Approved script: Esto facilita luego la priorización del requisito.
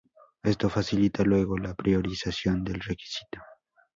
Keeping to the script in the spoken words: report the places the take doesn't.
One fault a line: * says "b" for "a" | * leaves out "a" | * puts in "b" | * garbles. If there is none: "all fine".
all fine